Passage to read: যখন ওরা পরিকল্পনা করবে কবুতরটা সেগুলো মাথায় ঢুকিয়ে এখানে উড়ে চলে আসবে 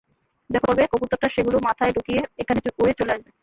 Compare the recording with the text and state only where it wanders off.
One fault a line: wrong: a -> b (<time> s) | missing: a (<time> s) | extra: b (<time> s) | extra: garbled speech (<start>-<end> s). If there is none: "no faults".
missing: ওরা পরিকল্পনা (0.7 s)